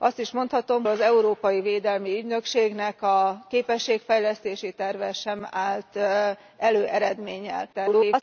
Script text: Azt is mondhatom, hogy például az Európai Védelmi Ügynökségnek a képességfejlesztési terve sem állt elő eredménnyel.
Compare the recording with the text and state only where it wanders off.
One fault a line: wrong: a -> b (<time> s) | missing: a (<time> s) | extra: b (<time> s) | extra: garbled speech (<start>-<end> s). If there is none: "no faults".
missing: hogy például (0.9 s)
extra: garbled speech (7.7-8.2 s)